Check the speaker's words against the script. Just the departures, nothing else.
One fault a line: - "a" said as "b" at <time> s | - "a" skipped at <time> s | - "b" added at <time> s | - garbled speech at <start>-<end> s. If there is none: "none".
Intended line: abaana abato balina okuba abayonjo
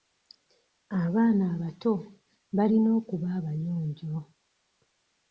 none